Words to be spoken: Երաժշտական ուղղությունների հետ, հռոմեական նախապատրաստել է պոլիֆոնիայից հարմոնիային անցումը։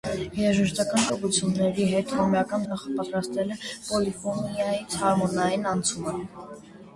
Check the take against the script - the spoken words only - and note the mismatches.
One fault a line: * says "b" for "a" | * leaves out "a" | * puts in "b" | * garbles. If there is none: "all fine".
all fine